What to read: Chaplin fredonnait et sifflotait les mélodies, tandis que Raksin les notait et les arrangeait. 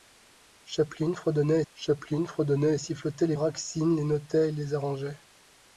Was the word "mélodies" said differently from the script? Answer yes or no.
yes